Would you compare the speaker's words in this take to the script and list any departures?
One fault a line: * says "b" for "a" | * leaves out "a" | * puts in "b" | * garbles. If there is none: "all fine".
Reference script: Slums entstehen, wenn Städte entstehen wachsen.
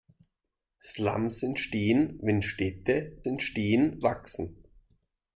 all fine